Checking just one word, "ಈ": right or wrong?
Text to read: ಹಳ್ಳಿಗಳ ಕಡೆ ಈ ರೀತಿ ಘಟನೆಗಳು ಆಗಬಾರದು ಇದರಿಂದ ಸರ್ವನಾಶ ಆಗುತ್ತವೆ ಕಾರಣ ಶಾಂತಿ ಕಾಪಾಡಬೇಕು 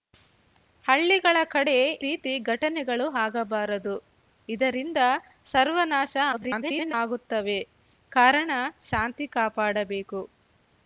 wrong